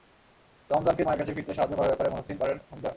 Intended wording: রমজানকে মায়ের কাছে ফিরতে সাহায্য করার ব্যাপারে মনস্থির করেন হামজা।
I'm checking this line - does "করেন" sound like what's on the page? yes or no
yes